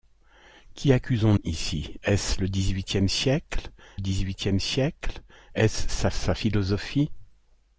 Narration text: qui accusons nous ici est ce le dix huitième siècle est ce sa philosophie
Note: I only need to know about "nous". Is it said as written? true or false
false